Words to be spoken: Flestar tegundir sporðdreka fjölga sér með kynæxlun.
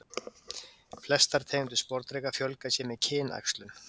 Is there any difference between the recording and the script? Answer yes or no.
no